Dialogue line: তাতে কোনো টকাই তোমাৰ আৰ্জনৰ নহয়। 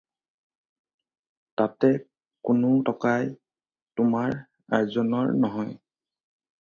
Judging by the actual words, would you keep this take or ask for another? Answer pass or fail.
pass